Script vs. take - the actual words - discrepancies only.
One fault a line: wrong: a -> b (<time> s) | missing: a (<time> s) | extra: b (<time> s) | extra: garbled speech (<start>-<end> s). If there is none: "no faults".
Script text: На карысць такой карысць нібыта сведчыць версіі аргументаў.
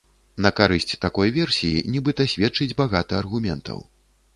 wrong: карысць -> версіі (1.4 s)
wrong: версіі -> багата (2.9 s)